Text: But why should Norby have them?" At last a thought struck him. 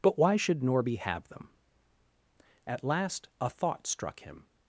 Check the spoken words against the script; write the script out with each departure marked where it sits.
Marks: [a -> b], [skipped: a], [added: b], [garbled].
But why should Norby have them?" At last a thought struck him.